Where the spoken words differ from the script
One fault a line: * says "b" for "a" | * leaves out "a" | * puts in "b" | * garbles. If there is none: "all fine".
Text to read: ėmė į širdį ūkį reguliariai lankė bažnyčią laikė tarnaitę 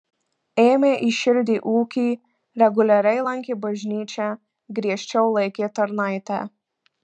* puts in "griežčiau"